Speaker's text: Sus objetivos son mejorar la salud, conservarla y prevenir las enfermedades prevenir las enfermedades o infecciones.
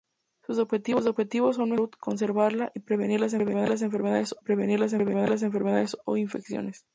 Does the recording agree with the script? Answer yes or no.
yes